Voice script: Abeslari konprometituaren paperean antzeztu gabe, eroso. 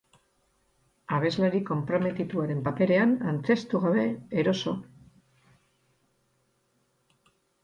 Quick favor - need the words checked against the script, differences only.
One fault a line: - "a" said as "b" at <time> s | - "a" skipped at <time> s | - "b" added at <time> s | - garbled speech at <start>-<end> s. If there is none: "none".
none